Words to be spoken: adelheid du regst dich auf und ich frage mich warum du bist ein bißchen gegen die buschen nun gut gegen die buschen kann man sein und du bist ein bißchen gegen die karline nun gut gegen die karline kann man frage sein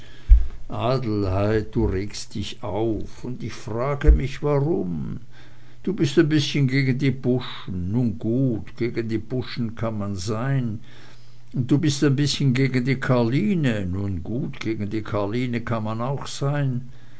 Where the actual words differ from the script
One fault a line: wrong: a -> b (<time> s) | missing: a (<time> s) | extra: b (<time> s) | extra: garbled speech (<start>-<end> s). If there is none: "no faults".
wrong: frage -> auch (16.0 s)